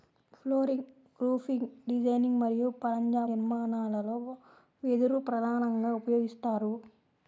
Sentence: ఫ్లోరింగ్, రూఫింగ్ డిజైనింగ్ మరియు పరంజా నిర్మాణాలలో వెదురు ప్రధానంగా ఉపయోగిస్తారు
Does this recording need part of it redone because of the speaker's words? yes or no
no